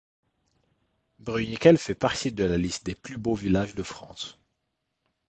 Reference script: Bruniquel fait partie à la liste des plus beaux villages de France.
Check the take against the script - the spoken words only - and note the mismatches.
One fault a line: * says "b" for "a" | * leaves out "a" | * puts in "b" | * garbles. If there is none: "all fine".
* says "de" for "à"